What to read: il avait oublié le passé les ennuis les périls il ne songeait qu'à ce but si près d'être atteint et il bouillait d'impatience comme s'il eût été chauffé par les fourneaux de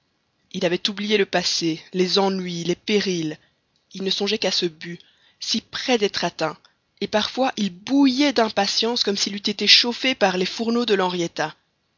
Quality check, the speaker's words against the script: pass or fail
fail